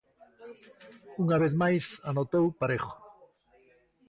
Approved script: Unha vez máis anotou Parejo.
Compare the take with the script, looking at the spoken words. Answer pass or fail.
pass